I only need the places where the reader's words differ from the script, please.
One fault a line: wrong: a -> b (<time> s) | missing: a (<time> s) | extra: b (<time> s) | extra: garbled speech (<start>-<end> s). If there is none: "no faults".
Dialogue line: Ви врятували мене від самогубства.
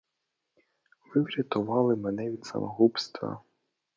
no faults